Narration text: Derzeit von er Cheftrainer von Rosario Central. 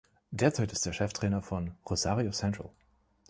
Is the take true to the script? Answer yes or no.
no